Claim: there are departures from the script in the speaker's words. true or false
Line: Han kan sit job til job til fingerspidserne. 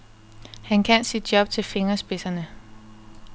true